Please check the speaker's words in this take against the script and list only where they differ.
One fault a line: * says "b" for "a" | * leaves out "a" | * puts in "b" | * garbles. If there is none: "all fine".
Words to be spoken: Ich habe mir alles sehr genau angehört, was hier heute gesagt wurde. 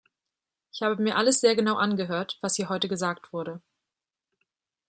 all fine